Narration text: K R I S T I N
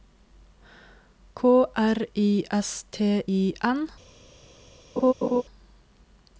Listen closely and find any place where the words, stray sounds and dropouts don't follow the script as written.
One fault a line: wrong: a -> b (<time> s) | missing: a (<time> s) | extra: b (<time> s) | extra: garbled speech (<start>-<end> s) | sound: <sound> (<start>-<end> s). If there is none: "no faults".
sound: laugh (5.0-5.4 s)